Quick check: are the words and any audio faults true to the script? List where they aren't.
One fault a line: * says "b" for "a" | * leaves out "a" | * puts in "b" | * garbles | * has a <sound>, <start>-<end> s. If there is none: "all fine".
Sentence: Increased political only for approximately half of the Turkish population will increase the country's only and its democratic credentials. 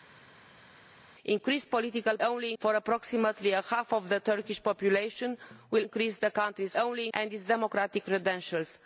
all fine